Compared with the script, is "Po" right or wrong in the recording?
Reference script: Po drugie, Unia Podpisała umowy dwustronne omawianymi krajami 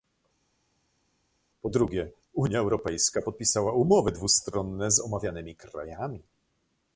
right